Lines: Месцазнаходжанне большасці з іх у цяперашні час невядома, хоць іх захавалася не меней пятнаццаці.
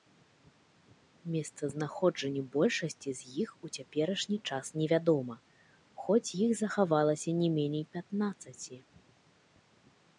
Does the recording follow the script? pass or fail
pass